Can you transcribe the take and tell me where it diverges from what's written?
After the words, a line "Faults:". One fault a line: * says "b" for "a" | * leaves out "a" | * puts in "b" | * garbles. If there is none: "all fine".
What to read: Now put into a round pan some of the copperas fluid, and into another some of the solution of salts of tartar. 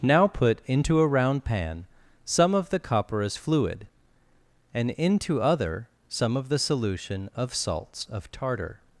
Now put into a round pan some of the copperas fluid, and into other some of the solution of salts of tartar.
Faults:
* says "other" for "another"